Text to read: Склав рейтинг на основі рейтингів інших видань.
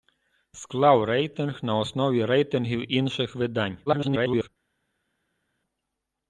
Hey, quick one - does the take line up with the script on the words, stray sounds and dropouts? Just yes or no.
no